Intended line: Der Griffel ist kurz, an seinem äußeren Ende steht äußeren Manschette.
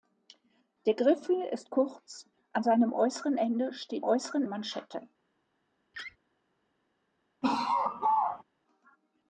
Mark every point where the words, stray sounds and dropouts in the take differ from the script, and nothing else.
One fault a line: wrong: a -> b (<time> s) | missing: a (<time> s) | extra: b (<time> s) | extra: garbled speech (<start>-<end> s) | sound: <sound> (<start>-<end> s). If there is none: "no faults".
sound: laugh (5.9-6.2 s)
sound: laugh (7.4-8.4 s)